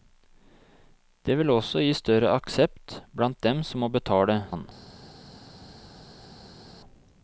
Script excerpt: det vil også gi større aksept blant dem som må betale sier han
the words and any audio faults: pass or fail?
fail